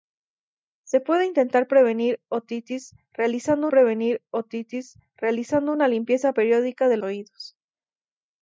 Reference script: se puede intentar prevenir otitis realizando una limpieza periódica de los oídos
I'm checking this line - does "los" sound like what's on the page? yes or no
no